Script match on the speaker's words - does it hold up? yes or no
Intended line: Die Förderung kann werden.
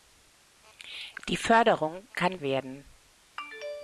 yes